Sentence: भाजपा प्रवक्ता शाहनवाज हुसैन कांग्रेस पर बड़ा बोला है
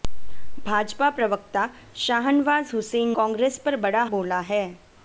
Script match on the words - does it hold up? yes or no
yes